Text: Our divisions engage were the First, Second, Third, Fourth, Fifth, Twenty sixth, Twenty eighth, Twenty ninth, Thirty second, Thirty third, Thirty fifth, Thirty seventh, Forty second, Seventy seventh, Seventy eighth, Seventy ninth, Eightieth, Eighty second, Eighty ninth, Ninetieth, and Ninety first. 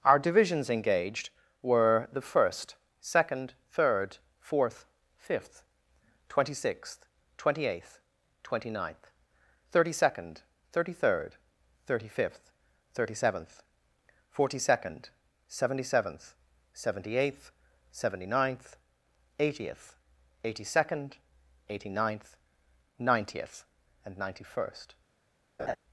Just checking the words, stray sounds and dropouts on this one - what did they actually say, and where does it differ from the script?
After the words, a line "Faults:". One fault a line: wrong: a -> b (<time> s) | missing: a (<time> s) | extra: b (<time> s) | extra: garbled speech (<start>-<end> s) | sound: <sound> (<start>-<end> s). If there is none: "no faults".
Our divisions engaged were the First, Second, Third, Fourth, Fifth, Twenty sixth, Twenty eighth, Twenty ninth, Thirty second, Thirty third, Thirty fifth, Thirty seventh, Forty second, Seventy seventh, Seventy eighth, Seventy ninth, Eightieth, Eighty second, Eighty ninth, Ninetieth, and Ninety first.
Faults:
wrong: engage -> engaged (0.7 s)
sound: laugh (25.6-25.8 s)